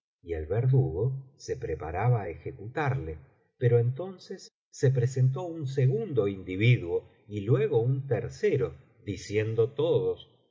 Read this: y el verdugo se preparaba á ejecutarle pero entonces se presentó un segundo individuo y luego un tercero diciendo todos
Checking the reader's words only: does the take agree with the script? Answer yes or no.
yes